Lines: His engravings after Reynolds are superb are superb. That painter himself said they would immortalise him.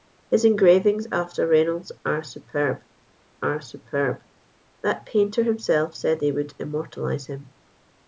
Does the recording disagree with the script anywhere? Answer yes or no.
no